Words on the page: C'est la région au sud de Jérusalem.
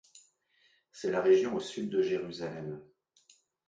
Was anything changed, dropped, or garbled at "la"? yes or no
no